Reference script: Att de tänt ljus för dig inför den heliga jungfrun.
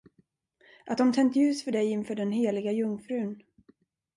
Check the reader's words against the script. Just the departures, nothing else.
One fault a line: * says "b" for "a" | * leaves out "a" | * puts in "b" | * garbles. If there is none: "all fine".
all fine